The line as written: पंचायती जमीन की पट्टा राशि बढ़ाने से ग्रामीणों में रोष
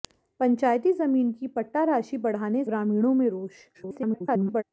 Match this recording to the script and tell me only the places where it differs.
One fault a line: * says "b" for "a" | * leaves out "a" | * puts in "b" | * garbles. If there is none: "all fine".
* leaves out "से"
* garbles